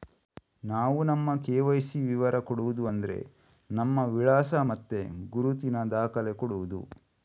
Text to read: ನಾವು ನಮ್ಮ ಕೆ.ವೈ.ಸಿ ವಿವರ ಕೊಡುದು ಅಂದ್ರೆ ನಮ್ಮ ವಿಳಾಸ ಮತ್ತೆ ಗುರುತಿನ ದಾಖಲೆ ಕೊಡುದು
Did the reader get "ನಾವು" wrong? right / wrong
right